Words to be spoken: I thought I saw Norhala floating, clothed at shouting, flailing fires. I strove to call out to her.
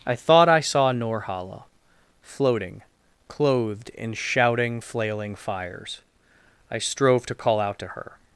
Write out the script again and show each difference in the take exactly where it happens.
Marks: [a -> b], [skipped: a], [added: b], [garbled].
I thought I saw Norhala floating, clothed [at -> in] shouting, flailing fires. I strove to call out to her.